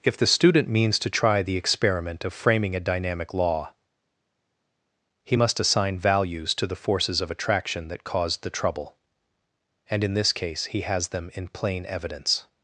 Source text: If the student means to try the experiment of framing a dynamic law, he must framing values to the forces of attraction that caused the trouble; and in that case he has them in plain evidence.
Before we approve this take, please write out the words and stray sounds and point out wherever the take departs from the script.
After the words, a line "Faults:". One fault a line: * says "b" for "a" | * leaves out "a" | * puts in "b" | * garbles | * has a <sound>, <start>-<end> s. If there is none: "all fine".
If the student means to try the experiment of framing a dynamic law, he must assign values to the forces of attraction that caused the trouble; and in this case he has them in plain evidence.
Faults:
* says "assign" for "framing"
* says "this" for "that"